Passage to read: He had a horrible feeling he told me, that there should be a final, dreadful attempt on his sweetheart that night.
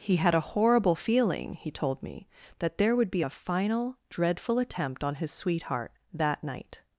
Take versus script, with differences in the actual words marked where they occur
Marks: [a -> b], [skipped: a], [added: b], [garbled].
He had a horrible feeling he told me, that there [should -> would] be a final, dreadful attempt on his sweetheart that night.